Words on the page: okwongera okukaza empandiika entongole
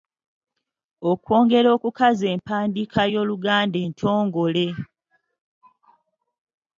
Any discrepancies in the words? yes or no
yes